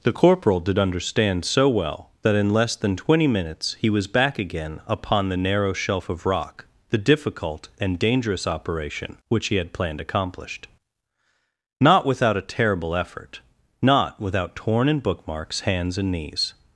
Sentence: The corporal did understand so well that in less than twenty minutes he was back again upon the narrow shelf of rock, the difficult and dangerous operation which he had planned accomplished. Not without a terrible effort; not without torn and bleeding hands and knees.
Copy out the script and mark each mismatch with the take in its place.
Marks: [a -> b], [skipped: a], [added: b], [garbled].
The corporal did understand so well that in less than twenty minutes he was back again upon the narrow shelf of rock, the difficult and dangerous operation which he had planned accomplished. Not without a terrible effort; not without torn and [bleeding -> bookmarks] hands and knees.